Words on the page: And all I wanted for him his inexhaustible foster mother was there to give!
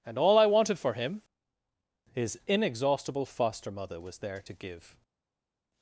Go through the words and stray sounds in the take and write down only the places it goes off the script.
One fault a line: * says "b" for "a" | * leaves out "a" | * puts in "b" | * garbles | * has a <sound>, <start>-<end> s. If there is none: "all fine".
all fine